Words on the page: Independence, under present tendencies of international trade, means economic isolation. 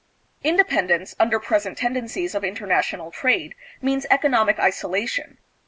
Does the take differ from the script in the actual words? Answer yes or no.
no